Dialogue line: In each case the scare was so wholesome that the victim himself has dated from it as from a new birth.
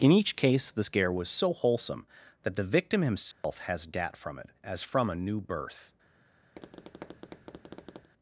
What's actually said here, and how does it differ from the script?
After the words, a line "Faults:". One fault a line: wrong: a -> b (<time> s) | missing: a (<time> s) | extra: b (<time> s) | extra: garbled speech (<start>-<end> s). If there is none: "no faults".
In each case the scare was so wholesome that the victim himself has dat from it as from a new birth.
Faults:
wrong: dated -> dat (3.8 s)